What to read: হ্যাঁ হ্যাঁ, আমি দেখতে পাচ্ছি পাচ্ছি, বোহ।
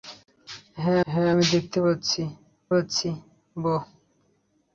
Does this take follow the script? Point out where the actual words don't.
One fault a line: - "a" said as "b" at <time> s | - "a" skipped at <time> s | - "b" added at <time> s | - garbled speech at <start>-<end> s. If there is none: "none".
none